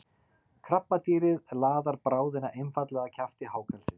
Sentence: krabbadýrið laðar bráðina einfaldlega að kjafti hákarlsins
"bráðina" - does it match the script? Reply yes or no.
yes